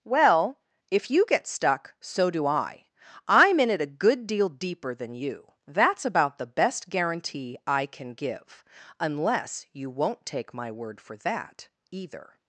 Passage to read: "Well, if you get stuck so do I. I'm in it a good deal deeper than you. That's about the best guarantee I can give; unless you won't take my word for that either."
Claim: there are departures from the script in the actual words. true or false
false